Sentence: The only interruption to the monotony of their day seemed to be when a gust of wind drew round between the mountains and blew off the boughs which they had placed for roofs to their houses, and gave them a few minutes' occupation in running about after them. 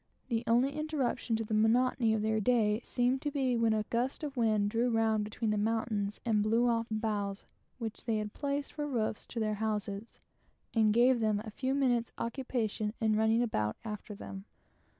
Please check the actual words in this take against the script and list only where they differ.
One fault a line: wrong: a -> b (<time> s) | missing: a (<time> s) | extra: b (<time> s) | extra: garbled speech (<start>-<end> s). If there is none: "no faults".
missing: the (6.9 s)